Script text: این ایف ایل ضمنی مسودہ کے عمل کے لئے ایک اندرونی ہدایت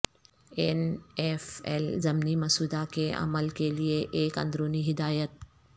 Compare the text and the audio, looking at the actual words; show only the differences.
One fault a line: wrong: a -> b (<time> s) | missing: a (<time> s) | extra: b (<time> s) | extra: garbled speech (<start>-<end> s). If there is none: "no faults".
no faults